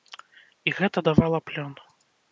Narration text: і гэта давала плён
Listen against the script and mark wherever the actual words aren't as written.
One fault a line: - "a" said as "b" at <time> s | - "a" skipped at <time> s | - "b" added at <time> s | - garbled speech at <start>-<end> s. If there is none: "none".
none